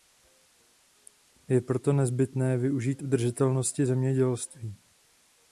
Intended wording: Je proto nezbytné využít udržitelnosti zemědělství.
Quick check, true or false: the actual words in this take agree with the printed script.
true